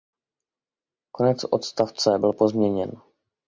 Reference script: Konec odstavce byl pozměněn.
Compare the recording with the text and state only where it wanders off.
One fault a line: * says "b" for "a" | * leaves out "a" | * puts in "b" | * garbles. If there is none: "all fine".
all fine